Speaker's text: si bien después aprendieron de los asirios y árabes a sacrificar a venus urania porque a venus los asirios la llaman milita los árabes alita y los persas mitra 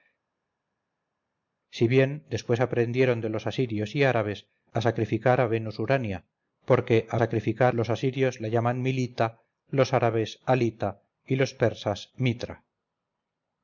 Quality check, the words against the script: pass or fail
fail